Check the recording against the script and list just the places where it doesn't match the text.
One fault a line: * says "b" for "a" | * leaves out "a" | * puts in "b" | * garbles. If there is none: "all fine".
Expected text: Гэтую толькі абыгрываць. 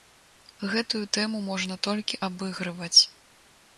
* puts in "тэму можна"